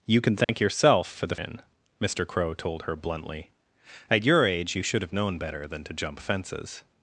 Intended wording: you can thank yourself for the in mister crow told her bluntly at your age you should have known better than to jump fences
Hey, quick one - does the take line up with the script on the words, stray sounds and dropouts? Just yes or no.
no